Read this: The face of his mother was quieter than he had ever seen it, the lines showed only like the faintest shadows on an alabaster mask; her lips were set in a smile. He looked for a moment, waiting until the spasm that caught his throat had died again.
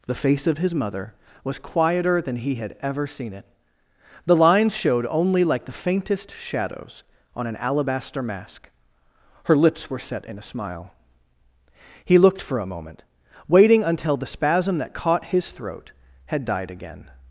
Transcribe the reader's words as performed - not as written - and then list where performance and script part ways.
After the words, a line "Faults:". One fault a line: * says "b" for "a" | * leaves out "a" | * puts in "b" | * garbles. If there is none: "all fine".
The face of his mother was quieter than he had ever seen it, the lines showed only like the faintest shadows on an alabaster mask; her lips were set in a smile. He looked for a moment, waiting until the spasm that caught his throat had died again.
Faults:
all fine